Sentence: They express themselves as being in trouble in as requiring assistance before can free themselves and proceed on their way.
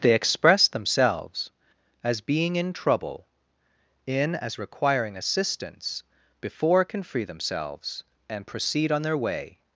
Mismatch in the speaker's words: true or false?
false